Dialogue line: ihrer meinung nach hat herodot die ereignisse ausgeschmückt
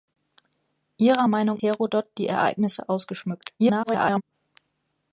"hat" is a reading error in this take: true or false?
true